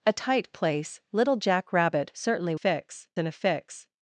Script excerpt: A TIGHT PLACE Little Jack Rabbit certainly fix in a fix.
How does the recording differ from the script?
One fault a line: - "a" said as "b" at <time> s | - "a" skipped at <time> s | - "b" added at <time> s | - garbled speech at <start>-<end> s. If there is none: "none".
none